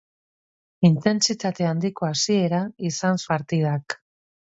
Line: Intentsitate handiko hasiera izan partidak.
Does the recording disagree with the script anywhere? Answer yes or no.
no